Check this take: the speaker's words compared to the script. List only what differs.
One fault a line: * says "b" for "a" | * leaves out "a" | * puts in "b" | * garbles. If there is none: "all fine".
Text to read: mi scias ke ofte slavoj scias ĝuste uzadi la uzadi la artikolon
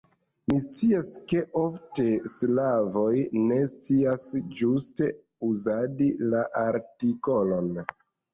* puts in "ne"
* leaves out "uzadi la"